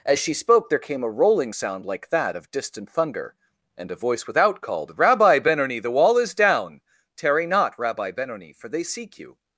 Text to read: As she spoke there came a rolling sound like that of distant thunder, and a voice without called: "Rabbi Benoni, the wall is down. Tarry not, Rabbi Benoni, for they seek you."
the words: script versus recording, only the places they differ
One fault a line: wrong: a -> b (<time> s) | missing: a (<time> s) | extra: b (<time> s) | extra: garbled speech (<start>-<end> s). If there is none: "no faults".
no faults